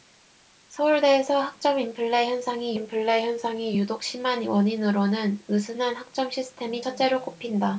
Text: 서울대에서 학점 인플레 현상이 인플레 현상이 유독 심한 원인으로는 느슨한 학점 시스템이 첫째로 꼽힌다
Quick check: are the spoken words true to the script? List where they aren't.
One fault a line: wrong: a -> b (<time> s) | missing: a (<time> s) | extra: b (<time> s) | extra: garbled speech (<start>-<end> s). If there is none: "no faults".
no faults